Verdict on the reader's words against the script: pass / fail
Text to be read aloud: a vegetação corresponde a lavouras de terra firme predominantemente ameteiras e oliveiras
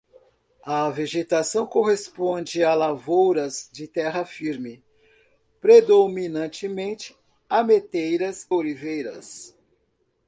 fail